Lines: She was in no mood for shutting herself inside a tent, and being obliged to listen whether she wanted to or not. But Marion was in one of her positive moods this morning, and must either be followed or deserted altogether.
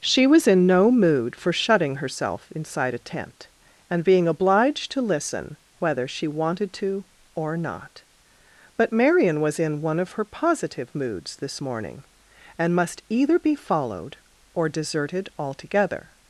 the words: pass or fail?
pass